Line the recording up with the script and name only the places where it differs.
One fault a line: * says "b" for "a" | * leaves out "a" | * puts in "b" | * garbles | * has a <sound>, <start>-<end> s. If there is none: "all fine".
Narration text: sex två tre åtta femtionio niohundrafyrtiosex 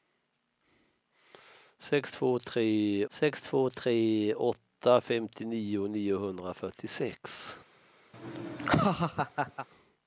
* puts in "sex två tre"
* has a laugh, 8.1-9.7 s